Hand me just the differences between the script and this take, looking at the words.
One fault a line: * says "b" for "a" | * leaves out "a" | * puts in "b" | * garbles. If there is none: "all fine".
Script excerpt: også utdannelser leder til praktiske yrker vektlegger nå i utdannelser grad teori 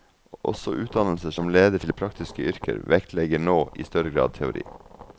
* puts in "som"
* says "større" for "utdannelser"